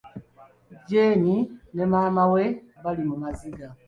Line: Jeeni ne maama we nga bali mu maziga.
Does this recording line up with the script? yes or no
no